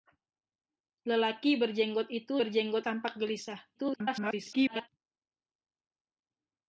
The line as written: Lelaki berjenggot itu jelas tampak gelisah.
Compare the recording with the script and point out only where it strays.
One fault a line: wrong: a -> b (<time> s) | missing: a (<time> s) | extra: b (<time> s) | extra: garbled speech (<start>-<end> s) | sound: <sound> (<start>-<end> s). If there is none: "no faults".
wrong: jelas -> berjenggot (2.4 s)
extra: garbled speech (3.7-4.9 s)